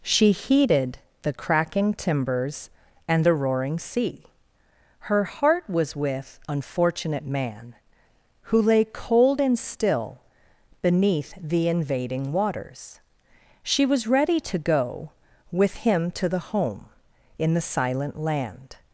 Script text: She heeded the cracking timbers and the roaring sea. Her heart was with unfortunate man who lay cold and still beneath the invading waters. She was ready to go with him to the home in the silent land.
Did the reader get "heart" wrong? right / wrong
right